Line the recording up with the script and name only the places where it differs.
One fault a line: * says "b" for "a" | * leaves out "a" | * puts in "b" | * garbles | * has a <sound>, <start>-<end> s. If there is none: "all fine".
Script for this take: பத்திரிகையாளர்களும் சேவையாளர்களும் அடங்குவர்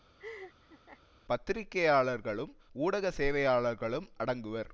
* has a laugh, 0.2-1.0 s
* puts in "ஊடக"